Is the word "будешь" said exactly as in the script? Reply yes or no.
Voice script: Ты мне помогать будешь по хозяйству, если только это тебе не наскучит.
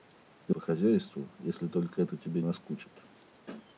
no